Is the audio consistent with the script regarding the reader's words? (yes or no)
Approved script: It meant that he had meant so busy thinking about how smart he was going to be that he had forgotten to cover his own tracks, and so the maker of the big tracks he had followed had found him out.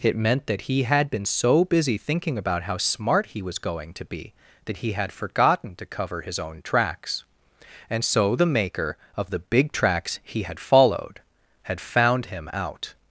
no